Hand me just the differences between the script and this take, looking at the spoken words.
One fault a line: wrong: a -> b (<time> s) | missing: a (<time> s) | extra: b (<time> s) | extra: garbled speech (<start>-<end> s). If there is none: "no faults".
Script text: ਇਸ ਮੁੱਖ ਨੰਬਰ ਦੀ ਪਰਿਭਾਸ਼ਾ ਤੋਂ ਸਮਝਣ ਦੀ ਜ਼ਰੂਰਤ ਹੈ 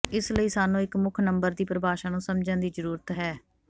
extra: ਲਈ ਸਾਨੂੰ ਇੱਕ (0.3 s)
wrong: ਤੋਂ -> ਨੂੰ (2.1 s)